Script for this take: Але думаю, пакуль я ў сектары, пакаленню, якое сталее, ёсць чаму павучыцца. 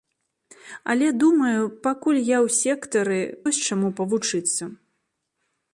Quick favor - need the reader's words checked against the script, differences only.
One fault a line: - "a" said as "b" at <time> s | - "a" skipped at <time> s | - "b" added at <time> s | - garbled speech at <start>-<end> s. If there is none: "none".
- "пакаленню якое сталее" skipped at 3.2 s